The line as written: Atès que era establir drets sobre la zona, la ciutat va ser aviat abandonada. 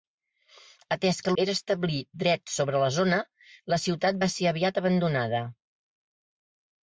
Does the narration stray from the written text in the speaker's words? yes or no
no